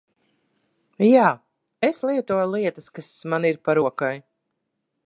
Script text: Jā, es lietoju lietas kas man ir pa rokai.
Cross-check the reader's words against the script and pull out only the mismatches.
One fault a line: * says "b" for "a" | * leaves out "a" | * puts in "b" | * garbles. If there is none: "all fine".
all fine